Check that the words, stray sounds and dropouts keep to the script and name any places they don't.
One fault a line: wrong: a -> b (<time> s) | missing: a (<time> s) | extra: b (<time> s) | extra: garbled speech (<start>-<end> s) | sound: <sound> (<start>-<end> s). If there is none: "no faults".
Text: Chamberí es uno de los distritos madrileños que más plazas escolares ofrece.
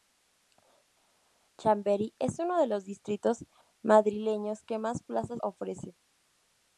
missing: escolares (5.4 s)